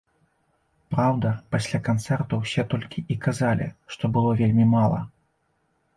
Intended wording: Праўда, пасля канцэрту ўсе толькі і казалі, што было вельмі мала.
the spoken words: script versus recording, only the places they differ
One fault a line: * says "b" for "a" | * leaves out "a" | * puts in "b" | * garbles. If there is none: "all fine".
all fine